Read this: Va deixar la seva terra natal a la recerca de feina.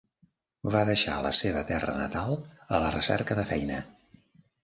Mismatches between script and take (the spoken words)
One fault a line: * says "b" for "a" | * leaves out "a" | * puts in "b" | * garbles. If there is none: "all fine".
all fine